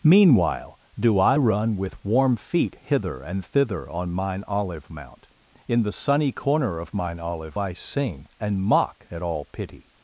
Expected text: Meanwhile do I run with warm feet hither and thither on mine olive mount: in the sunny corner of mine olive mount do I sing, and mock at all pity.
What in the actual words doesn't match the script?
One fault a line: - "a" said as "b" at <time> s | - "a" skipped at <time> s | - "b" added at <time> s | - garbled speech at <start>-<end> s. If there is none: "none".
- "mount do" skipped at 7.6 s